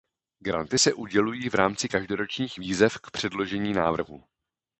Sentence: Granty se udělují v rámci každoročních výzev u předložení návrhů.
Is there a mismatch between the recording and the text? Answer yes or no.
yes